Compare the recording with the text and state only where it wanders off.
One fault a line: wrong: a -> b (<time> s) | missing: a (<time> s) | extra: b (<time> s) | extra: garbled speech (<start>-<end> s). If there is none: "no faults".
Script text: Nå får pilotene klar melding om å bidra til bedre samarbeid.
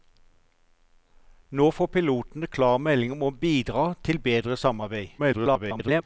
extra: garbled speech (5.2-6.0 s)